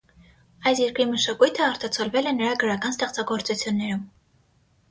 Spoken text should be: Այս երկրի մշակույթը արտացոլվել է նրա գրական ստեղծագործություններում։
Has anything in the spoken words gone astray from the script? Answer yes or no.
no